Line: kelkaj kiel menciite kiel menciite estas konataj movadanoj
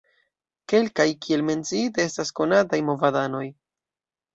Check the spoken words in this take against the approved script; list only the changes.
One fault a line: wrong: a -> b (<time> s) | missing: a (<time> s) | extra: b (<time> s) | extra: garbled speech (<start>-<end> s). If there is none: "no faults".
missing: kiel menciite (2.1 s)